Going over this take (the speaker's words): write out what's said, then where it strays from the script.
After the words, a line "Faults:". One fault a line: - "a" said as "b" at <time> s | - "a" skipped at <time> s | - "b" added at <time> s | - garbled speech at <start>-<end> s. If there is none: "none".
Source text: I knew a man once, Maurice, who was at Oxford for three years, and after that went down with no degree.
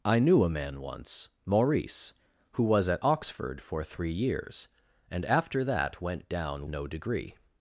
I knew a man once, Maurice, who was at Oxford for three years, and after that went down no degree.
Faults:
- "with" skipped at 6.7 s